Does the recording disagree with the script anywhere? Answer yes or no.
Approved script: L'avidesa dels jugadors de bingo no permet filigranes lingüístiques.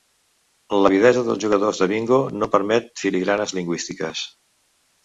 no